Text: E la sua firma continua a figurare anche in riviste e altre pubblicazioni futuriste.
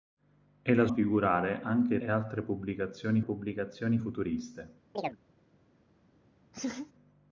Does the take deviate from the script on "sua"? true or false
true